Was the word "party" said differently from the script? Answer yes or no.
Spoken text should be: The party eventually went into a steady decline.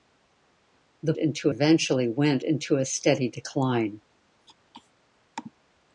yes